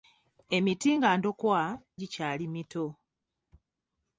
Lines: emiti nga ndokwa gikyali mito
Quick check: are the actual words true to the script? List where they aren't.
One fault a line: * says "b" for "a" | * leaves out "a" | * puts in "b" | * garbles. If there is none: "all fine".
all fine